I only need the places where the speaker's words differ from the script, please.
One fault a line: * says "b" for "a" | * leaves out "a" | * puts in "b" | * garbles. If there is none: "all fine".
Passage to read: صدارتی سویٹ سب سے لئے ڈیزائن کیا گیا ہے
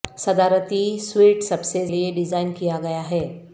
all fine